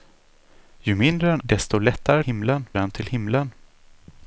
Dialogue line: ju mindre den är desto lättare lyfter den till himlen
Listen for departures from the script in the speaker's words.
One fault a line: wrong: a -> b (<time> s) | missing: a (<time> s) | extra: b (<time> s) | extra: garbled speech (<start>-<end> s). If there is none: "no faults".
missing: är (1.4 s)
wrong: lyfter -> himlen (2.2 s)